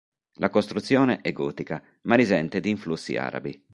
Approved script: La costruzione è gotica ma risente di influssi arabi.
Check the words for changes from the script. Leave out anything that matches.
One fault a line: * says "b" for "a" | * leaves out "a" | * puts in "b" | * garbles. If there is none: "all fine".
all fine